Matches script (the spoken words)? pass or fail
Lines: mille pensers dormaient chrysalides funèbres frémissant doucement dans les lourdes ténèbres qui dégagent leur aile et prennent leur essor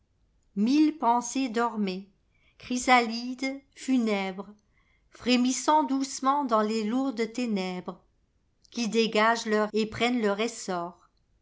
fail